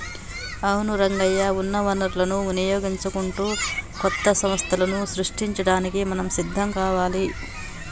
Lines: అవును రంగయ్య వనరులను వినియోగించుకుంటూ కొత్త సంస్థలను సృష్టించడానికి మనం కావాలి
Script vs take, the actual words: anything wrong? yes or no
yes